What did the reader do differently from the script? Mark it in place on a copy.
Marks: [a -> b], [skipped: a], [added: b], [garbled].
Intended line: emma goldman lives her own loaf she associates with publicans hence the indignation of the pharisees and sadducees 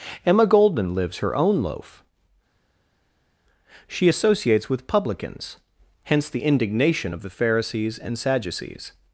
emma goldman lives her own loaf she associates with publicans hence the indignation of the pharisees and sadducees